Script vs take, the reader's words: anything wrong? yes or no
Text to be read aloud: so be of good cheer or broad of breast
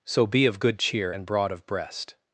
yes